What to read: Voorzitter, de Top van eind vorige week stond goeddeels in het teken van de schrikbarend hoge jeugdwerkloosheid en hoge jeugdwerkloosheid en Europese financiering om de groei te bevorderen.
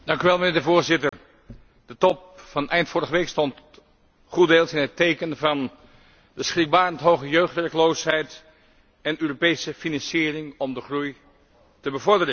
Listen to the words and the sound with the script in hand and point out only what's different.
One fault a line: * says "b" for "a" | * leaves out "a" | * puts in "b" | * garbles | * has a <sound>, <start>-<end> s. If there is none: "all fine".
* has a dropout, 1.1-1.1 s
* leaves out "hoge jeugdwerkloosheid en"